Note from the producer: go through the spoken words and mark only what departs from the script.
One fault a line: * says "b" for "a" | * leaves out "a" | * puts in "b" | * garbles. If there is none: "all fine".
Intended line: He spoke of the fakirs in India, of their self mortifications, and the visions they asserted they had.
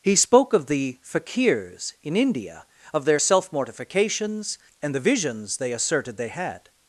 all fine